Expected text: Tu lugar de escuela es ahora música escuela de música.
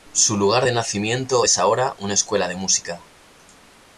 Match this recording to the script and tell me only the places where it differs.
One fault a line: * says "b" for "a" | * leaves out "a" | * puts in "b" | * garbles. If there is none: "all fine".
* says "Su" for "Tu"
* says "nacimiento" for "escuela"
* says "una" for "música"